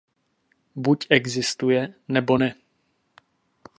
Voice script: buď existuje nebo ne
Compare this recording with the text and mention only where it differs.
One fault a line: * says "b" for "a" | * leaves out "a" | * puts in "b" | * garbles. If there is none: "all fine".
all fine